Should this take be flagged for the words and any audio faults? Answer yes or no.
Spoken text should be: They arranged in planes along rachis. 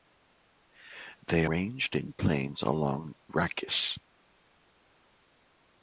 no